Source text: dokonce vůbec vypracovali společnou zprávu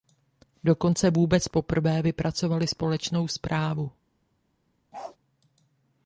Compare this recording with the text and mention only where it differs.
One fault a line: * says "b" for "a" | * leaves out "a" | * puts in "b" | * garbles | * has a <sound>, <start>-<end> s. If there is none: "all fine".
* puts in "poprvé"
* has a bark, 4.9-5.2 s